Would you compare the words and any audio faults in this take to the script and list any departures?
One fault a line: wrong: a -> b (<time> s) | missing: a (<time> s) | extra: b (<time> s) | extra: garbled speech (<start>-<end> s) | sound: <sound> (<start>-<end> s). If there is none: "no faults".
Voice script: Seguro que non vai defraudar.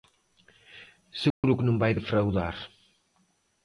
sound: dropout (1.3-1.4 s)